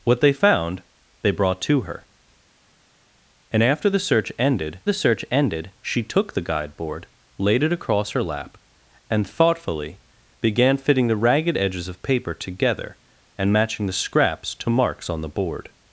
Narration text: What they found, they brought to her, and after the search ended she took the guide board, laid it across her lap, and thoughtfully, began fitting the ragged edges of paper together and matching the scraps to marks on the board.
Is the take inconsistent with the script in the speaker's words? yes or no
yes